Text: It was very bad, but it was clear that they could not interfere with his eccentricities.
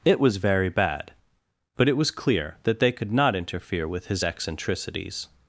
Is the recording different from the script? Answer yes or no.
no